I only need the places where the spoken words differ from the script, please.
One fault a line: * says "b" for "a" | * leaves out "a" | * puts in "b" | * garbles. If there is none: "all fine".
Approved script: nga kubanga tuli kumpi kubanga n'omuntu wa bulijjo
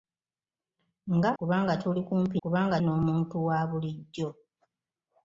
all fine